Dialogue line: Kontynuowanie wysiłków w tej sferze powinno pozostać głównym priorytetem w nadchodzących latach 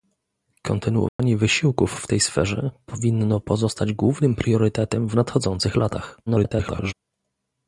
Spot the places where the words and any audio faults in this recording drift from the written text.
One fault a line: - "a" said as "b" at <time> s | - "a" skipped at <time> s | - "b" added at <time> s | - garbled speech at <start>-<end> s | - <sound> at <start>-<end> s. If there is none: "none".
- dropout at 1.1-1.2 s
- garbled speech at 6.3-6.9 s